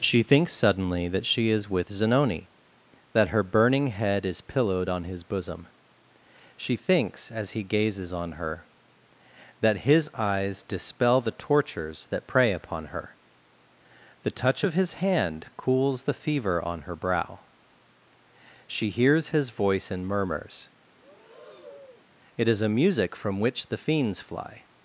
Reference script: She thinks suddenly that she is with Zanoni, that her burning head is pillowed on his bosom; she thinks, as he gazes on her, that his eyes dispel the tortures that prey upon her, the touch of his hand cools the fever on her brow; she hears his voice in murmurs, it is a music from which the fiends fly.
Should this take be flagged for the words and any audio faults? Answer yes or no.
yes